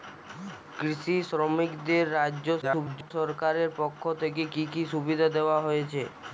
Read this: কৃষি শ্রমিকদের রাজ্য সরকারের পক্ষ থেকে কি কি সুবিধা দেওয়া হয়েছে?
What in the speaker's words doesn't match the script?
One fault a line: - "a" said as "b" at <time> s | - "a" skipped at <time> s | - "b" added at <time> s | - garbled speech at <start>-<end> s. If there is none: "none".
- garbled speech at 2.6-3.1 s